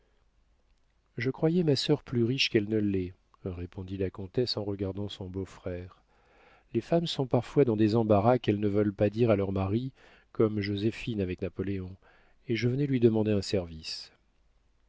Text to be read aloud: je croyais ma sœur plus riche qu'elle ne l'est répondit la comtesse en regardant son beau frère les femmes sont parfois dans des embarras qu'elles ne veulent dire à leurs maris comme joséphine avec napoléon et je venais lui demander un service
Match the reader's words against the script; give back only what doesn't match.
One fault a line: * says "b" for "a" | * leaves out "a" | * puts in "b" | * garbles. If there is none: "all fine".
* puts in "pas"